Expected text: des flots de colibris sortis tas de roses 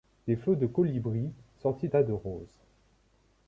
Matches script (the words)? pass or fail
pass